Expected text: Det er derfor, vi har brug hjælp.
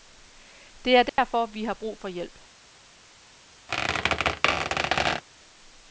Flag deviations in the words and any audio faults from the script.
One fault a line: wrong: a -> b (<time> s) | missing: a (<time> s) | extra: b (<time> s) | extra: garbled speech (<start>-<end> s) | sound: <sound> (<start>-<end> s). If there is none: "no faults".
sound: dropout (1.1-1.2 s)
extra: for (2.0 s)
sound: squeak (3.7-5.2 s)